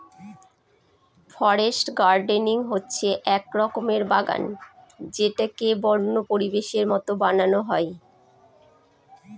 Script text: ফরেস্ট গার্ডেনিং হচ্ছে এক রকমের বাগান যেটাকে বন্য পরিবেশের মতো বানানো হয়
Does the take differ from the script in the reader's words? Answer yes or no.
no